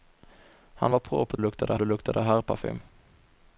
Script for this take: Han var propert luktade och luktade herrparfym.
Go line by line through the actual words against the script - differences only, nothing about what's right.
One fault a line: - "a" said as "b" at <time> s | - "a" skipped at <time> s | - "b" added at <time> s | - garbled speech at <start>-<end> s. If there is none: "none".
none